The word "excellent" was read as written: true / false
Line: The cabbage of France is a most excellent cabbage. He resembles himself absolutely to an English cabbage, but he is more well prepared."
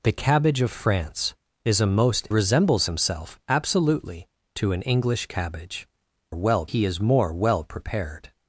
false